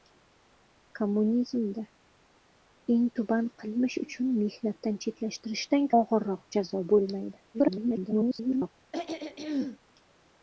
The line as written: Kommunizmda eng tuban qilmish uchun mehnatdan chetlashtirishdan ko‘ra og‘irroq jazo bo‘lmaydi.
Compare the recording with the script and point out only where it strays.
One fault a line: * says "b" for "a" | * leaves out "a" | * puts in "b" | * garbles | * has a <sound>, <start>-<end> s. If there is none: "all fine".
* leaves out "ko‘ra"
* garbles
* has a throat clearing, 8.9-9.8 s